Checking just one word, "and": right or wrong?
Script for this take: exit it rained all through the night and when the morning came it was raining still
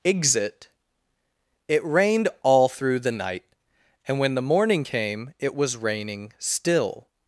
right